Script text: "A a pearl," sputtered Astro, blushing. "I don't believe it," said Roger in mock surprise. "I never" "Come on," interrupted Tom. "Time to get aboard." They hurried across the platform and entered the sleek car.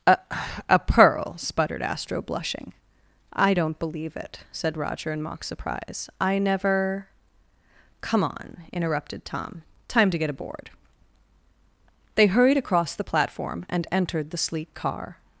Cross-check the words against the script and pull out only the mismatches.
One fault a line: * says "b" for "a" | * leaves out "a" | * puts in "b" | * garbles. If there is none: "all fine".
all fine